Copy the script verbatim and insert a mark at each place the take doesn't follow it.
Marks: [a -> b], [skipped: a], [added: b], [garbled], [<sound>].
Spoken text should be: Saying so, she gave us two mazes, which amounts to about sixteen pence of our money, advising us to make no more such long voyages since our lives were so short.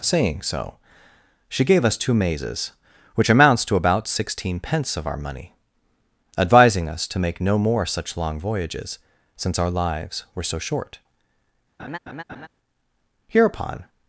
Saying so, she gave us two mazes, which amounts to about sixteen pence of our money, advising us to make no more such long voyages since our lives were so short. [laugh] [added: Hereupon]